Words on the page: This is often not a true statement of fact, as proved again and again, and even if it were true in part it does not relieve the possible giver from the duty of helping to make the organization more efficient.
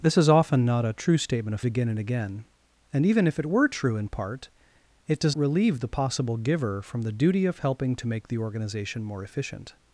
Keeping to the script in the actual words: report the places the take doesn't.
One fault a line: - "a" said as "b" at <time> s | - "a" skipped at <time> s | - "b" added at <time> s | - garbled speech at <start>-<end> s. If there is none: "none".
- "fact as proved" skipped at 1.6 s
- "not" skipped at 5.4 s